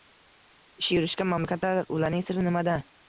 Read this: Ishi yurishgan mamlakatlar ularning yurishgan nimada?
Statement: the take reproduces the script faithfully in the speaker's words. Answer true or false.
false